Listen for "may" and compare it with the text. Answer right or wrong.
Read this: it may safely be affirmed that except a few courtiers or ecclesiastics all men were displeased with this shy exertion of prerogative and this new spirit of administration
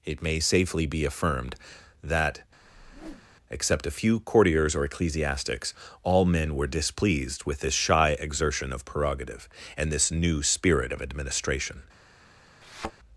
right